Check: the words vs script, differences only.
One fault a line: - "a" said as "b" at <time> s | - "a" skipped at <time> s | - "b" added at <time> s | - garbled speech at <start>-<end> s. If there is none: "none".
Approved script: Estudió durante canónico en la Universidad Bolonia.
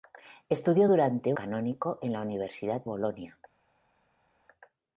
none